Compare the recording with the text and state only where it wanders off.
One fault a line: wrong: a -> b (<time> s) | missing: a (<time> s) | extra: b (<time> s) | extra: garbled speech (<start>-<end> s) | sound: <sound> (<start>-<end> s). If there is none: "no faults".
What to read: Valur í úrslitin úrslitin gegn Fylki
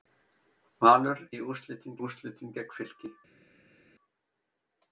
no faults